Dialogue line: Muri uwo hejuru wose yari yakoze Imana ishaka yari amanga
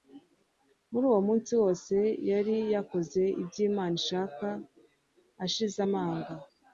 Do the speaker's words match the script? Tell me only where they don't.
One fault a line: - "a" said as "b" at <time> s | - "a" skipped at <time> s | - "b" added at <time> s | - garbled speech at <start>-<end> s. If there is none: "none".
- "hejuru" said as "munsi" at 1.3 s
- "ibyo" added at 3.4 s
- "yari" said as "ashize" at 5.5 s